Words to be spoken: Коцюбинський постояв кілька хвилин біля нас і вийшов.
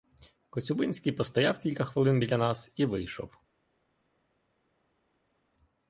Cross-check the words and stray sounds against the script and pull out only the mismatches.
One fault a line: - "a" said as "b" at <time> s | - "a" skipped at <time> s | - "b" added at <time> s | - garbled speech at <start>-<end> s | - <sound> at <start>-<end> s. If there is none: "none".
none